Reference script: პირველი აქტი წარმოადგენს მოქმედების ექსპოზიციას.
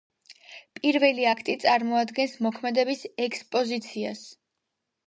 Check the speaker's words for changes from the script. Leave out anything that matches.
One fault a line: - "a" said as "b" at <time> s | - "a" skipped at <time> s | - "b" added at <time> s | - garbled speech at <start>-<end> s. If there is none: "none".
none